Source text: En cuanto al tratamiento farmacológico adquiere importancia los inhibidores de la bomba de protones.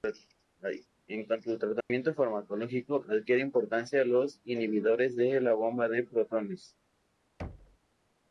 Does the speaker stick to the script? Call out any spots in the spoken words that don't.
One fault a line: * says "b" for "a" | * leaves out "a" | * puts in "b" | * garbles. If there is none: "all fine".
all fine